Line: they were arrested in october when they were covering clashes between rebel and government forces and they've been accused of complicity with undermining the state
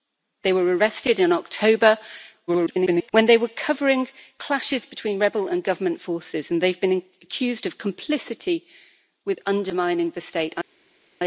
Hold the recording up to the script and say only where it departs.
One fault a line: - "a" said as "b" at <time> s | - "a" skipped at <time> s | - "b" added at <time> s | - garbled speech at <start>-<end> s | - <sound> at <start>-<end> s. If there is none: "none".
- garbled speech at 2.5-3.1 s